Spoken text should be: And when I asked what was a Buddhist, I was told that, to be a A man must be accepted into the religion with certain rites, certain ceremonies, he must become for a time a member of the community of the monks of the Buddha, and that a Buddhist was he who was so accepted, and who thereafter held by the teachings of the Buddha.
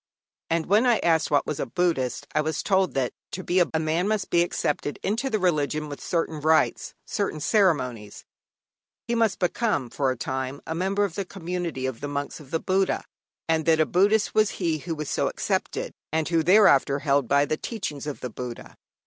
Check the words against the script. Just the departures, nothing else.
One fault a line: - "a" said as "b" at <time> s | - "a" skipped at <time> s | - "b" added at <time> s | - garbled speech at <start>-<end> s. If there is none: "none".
none